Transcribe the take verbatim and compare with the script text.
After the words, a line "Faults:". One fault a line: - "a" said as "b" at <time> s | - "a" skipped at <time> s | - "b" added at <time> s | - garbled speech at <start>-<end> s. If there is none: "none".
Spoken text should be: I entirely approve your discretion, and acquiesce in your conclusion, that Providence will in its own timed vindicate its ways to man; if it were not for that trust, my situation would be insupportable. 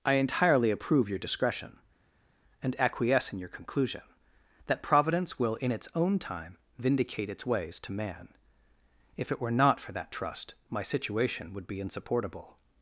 I entirely approve your discretion, and acquiesce in your conclusion, that Providence will in its own time vindicate its ways to man; if it were not for that trust, my situation would be insupportable.
Faults:
- "timed" said as "time" at 6.2 s